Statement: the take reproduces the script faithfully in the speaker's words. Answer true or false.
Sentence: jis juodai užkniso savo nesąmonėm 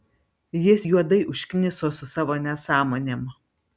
false